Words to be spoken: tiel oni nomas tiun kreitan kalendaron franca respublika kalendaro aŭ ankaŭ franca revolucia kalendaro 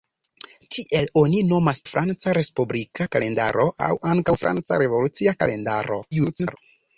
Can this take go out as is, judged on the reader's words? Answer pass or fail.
fail